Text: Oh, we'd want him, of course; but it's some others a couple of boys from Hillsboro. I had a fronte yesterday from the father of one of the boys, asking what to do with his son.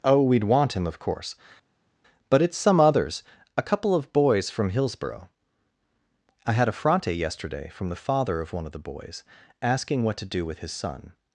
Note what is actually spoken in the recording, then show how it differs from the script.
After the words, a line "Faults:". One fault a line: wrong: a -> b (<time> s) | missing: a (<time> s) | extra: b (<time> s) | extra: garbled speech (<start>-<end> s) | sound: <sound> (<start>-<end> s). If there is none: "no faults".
Oh, we'd want him, of course; but it's some others a couple of boys from Hillsboro. I had a fronte yesterday from the father of one of the boys, asking what to do with his son.
Faults:
no faults